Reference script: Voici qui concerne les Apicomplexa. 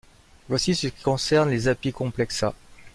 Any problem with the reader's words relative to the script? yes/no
yes